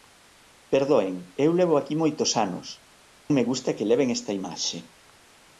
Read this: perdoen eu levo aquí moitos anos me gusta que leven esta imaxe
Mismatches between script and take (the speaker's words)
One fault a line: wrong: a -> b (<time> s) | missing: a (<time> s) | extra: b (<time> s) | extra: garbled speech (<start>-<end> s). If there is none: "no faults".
no faults